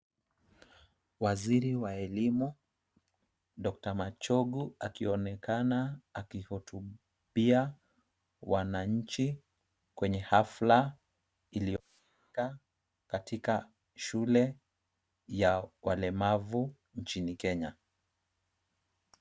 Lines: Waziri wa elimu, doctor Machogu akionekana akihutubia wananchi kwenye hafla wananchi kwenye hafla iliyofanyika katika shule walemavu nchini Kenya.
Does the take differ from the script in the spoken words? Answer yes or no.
yes